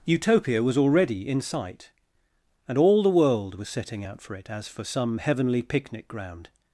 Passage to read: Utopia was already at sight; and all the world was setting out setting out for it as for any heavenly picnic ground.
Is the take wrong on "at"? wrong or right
wrong